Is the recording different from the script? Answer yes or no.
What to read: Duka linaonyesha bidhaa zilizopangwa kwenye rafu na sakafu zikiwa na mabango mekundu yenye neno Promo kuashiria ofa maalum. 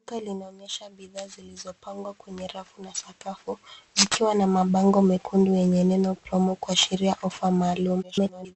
yes